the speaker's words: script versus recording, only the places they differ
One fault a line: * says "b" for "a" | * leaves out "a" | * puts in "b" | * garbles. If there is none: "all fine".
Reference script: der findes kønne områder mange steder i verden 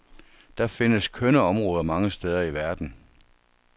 all fine